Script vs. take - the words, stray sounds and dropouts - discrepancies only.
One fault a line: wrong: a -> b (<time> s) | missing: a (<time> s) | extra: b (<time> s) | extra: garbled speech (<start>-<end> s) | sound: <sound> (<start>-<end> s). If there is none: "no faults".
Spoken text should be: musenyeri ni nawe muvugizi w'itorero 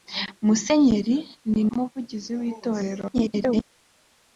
missing: nawe (1.6 s)
extra: garbled speech (3.1-3.6 s)